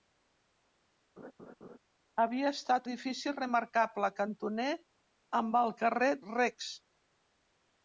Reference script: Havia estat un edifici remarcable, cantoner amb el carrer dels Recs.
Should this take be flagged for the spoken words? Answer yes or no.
yes